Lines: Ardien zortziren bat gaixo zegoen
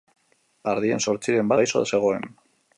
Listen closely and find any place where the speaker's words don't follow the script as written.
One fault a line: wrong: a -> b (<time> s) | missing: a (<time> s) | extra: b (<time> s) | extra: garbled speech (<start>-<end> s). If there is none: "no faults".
missing: bat (1.5 s)